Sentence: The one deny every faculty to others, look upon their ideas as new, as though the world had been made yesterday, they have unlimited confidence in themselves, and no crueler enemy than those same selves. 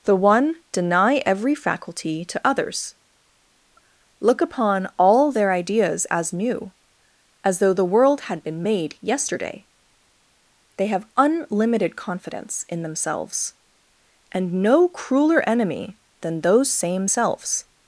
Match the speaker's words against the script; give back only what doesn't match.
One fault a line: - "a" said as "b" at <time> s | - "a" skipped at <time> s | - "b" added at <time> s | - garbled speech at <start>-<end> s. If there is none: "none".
- "all" added at 5.0 s